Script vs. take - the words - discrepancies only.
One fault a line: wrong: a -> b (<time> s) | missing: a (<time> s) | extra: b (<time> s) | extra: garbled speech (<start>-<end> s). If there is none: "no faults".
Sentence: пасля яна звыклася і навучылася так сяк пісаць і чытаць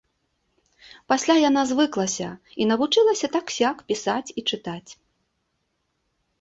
no faults